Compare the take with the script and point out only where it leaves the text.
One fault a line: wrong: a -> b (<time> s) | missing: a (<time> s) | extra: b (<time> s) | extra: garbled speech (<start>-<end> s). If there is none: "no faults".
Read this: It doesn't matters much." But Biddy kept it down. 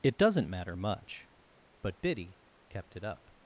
wrong: matters -> matter (0.5 s)
wrong: down -> up (3.0 s)